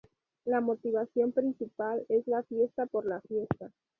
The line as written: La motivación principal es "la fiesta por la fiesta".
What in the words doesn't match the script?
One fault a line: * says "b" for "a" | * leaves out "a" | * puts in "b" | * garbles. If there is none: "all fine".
all fine